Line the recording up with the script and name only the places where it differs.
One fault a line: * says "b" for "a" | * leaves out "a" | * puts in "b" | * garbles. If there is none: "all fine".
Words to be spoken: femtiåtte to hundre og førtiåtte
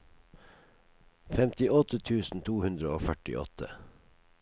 * puts in "tusen"